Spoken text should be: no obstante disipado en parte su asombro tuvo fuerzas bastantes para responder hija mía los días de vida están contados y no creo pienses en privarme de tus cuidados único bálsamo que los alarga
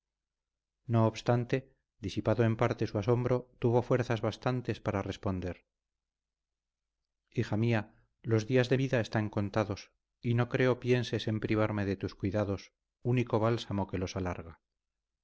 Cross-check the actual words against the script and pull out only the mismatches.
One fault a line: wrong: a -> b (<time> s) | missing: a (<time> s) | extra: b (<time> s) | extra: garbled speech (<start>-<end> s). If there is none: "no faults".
no faults